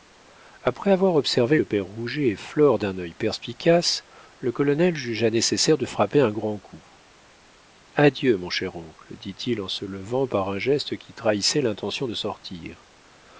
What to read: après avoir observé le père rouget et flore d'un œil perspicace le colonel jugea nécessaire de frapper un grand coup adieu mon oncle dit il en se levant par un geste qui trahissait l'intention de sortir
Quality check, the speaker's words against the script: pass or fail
fail